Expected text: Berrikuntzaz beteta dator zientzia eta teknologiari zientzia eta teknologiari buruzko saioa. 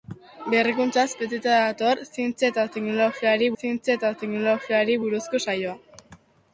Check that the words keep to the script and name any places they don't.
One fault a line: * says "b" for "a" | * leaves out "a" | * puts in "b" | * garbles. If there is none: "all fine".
all fine